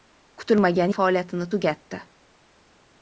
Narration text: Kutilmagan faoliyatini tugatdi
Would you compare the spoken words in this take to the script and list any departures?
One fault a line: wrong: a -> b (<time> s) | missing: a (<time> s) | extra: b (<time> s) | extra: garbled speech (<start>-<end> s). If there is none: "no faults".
no faults